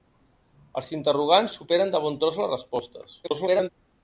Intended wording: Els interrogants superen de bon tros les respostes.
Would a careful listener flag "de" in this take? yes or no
no